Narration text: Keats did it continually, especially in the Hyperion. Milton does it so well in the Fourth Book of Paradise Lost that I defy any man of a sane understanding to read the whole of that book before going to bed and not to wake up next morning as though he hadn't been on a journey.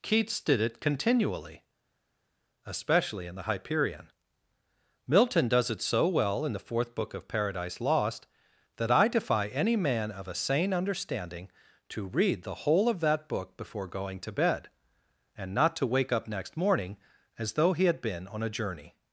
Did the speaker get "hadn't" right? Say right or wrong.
wrong